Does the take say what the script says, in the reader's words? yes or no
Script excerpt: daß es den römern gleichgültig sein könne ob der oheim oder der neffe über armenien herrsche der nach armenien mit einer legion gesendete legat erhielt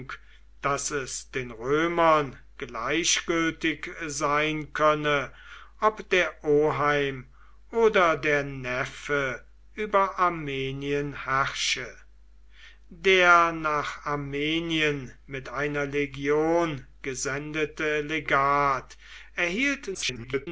no